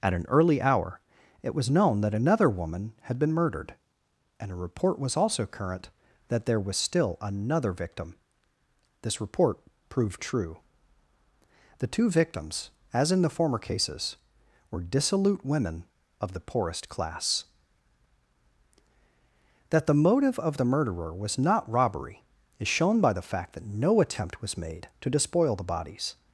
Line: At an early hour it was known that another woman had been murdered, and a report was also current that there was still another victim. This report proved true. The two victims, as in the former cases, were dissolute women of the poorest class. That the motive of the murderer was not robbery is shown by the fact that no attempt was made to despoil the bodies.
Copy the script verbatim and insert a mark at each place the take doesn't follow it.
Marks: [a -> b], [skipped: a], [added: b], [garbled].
At an early hour it was known that another woman had been murdered, and a report was also current that there was still another victim. This report proved true. The two victims, as in the former cases, were dissolute women of the poorest class. That the motive of the murderer was not robbery is shown by the fact that no attempt was made to despoil the bodies.